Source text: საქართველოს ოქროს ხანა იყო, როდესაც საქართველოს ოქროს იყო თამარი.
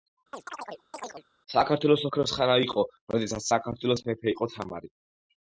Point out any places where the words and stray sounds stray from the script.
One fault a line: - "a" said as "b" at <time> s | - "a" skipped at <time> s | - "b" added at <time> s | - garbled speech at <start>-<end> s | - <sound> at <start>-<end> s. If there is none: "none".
- chirp at 0.3-1.2 s
- "ოქროს" said as "მეფე" at 4.1 s